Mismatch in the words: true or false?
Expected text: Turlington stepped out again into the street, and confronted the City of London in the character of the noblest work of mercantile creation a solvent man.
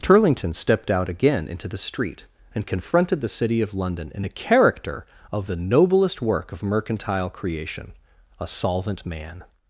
false